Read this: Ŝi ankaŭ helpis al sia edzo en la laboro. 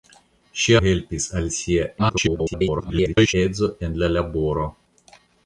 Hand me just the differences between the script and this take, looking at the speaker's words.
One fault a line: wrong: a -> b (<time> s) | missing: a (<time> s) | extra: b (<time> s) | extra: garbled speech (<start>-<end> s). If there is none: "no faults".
missing: ankaŭ (0.8 s)
extra: garbled speech (2.0-3.3 s)